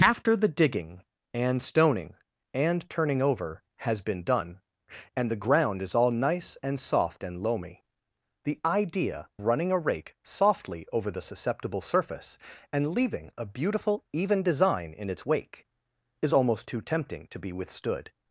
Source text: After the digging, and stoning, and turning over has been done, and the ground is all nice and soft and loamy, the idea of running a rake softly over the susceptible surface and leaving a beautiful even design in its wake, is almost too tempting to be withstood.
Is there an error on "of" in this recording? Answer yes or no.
yes